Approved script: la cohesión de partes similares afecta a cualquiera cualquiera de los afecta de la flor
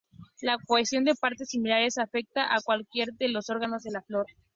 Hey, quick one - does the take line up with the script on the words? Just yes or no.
no